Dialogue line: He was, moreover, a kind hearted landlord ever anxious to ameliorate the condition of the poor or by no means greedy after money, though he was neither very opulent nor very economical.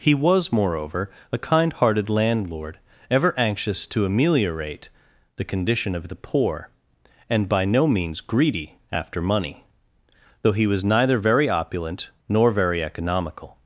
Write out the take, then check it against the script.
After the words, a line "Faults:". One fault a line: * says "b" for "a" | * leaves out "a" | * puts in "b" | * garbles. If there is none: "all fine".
He was, moreover, a kind hearted landlord ever anxious to ameliorate the condition of the poor and by no means greedy after money, though he was neither very opulent nor very economical.
Faults:
* says "and" for "or"